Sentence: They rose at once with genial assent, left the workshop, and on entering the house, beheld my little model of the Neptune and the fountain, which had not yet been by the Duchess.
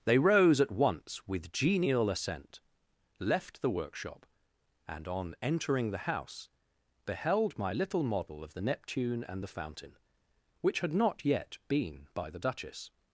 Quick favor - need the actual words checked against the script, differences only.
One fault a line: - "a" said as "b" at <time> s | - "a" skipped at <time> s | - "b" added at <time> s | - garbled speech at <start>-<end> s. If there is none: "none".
none